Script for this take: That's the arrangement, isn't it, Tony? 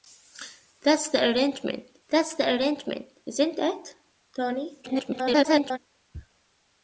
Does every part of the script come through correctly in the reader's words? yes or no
no